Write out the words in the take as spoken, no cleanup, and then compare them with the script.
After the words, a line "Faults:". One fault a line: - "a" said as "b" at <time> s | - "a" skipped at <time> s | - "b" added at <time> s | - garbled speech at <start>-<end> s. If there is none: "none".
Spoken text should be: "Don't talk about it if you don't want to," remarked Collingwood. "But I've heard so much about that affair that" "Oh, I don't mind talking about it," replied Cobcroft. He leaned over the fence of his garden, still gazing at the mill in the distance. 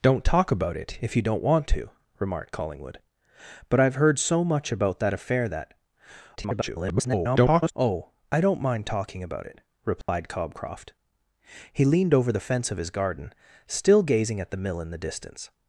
"Don't talk about it if you don't want to," remarked Collingwood. "But I've heard so much about that affair that" [garbled] "Oh, I don't mind talking about it," replied Cobcroft. He leaned over the fence of his garden, still gazing at the mill in the distance.
Faults:
- garbled speech at 6.4-7.7 s